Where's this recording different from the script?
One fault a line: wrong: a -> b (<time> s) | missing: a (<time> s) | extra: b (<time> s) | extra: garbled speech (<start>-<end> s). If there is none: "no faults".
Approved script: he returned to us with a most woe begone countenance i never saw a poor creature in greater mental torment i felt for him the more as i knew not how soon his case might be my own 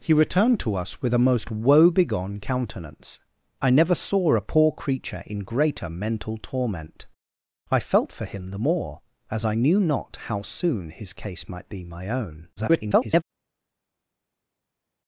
extra: garbled speech (12.6-13.2 s)